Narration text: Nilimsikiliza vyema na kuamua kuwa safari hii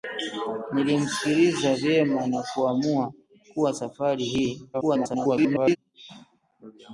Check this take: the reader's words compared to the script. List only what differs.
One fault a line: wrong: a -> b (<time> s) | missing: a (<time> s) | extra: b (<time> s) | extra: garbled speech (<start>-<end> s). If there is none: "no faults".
extra: garbled speech (4.7-5.8 s)